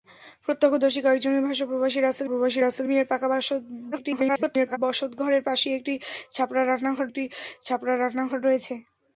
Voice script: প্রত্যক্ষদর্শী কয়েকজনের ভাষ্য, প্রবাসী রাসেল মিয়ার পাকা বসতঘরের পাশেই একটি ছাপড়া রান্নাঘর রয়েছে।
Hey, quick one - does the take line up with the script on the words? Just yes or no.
no